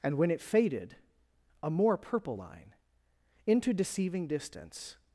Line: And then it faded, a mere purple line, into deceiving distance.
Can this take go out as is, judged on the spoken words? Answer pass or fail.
fail